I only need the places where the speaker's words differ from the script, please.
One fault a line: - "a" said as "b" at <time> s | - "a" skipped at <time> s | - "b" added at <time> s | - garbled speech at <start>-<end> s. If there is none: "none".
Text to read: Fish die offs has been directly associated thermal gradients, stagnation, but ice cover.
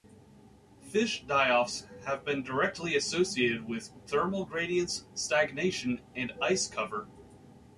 - "has" said as "have" at 2.0 s
- "with" added at 3.7 s
- "but" said as "and" at 6.1 s